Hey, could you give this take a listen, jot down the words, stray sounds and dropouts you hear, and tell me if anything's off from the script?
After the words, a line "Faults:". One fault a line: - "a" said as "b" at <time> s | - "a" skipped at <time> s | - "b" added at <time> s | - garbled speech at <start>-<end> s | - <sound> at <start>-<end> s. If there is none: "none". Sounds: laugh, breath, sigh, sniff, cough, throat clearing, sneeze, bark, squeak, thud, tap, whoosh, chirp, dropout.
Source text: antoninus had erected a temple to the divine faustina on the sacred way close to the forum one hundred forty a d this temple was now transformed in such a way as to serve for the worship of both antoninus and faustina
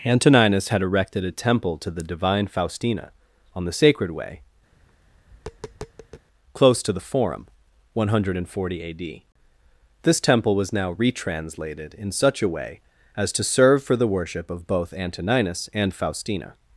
antoninus had erected a temple to the divine faustina on the sacred way close to the forum one hundred forty a d this temple was now retranslated in such a way as to serve for the worship of both antoninus and faustina
Faults:
- tap at 4.7-6.3 s
- "transformed" said as "retranslated" at 11.0 s